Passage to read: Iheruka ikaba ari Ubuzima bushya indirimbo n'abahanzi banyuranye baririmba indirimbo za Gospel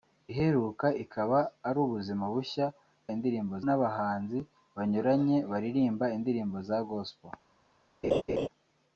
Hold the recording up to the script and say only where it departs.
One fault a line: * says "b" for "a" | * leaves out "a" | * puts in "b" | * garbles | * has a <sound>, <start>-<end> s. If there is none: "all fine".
* has a laugh, 8.0-8.5 s